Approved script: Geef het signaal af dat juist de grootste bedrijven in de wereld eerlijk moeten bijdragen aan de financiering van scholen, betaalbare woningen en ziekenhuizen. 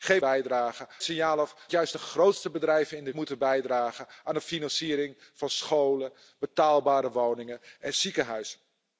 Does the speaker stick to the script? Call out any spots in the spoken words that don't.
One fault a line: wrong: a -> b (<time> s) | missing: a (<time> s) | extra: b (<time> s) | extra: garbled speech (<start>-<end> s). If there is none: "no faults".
wrong: het -> bijdragen (0.2 s)
missing: dat (1.7 s)
missing: wereld eerlijk (3.1 s)